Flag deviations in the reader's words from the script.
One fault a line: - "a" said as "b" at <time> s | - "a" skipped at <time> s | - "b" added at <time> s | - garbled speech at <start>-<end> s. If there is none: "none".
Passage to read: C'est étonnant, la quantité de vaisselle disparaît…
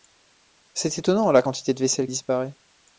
none